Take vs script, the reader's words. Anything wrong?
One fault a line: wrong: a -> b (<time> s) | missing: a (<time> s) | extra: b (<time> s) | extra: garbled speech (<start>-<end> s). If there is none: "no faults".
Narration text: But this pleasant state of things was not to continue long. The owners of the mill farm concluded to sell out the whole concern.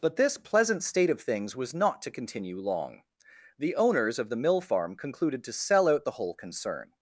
no faults